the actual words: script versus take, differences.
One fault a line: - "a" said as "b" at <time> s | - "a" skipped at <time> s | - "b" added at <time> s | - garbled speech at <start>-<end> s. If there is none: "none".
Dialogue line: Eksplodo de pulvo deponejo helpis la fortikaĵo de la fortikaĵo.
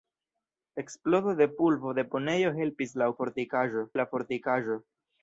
none